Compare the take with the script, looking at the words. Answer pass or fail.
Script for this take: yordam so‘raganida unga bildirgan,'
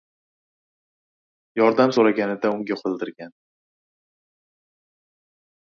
pass